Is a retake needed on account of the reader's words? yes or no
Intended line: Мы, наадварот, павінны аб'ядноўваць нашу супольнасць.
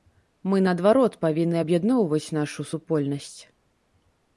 no